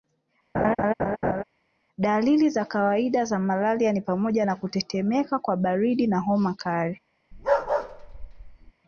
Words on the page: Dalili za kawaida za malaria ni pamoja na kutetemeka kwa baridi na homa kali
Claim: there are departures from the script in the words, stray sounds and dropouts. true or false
true